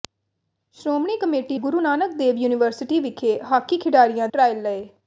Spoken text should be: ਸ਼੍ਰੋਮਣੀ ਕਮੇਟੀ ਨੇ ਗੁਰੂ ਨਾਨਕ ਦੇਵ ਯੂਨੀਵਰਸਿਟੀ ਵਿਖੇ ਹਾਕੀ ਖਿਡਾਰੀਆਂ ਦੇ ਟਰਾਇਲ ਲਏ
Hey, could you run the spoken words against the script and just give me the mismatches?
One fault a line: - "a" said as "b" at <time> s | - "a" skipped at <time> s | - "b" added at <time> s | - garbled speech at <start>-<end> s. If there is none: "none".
- "ਨੇ" skipped at 1.6 s
- "ਦੇ" skipped at 4.3 s